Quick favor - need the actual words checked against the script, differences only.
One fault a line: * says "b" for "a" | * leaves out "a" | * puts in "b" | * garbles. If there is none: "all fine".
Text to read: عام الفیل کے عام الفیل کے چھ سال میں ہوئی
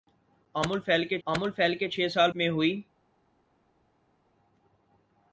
all fine